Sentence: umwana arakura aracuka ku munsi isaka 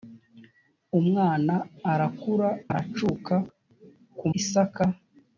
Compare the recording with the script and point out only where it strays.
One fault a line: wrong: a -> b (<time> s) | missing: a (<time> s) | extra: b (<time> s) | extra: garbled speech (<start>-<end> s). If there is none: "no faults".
missing: munsi (4.3 s)